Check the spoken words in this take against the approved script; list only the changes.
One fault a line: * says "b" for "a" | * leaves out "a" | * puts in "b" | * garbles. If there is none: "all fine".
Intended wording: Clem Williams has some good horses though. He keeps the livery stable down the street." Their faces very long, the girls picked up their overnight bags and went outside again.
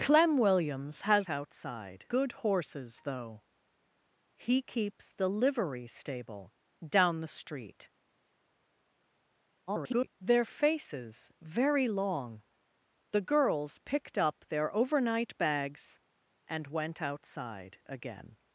* says "outside" for "some"
* garbles